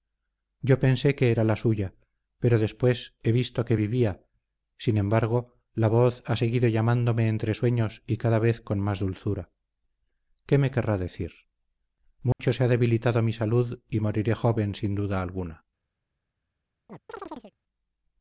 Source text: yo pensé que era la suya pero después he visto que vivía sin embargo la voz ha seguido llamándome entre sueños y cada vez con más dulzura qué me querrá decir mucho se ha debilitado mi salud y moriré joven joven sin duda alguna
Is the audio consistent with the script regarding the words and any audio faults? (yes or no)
no